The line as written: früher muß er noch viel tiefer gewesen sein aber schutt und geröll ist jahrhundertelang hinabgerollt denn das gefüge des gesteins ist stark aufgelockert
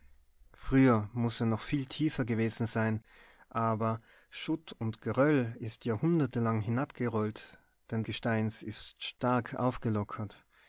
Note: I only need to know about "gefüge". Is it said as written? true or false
false